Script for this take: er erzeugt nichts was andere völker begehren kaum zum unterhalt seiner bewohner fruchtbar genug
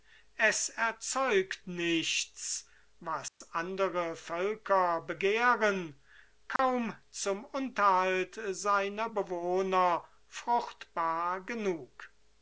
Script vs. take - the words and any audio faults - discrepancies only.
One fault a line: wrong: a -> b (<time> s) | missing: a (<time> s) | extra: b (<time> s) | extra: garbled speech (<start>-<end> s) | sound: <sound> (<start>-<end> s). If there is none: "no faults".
wrong: er -> es (0.4 s)
sound: dropout (3.3-3.4 s)
sound: dropout (6.6-6.6 s)